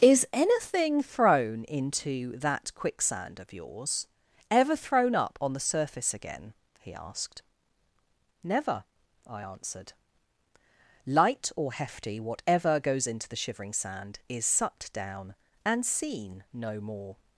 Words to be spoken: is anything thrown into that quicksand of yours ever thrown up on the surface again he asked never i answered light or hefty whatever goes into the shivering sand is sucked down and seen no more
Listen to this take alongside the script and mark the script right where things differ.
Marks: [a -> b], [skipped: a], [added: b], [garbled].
is anything thrown into that quicksand of yours ever thrown up on the surface again he asked never i answered light or hefty whatever goes into the shivering sand is sucked down and seen no more